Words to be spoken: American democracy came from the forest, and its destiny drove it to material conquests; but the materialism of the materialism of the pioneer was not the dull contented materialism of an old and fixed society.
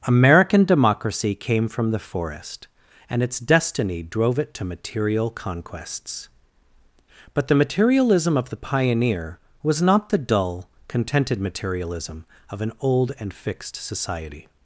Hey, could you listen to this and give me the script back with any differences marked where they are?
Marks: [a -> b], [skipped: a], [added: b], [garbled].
American democracy came from the forest, and its destiny drove it to material conquests; but the materialism of the [skipped: materialism of the] pioneer was not the dull contented materialism of an old and fixed society.